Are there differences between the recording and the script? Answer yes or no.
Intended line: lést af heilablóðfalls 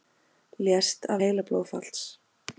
no